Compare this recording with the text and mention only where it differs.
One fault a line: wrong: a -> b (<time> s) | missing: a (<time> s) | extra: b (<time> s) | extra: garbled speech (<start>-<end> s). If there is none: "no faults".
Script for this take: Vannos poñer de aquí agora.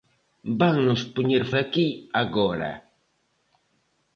no faults